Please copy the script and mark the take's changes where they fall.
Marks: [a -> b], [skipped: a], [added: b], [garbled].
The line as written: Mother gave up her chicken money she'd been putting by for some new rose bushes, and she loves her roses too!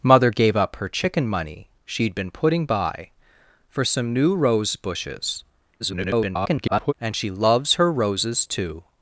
Mother gave up her chicken money she'd been putting by for some new rose bushes, [garbled] and she loves her roses too!